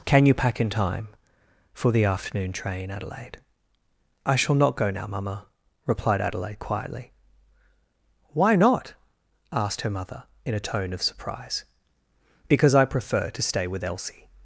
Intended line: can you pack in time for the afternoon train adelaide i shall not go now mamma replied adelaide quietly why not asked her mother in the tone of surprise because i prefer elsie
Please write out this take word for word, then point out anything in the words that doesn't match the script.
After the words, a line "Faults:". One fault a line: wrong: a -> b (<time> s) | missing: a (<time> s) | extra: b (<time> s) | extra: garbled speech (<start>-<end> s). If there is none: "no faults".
can you pack in time for the afternoon train adelaide i shall not go now mamma replied adelaide quietly why not asked her mother in a tone of surprise because i prefer to stay with elsie
Faults:
wrong: the -> a (10.6 s)
extra: to stay with (13.3 s)